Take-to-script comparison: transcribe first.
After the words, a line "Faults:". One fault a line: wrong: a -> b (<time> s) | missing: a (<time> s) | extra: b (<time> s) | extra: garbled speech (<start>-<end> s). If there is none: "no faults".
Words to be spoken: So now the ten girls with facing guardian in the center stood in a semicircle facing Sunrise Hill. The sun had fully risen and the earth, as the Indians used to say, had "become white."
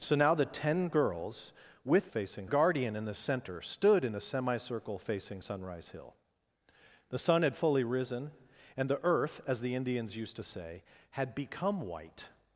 So now the ten girls with facing guardian in the center stood in a semicircle facing Sunrise Hill. The sun had fully risen and the earth, as the Indians used to say, had "become white."
Faults:
no faults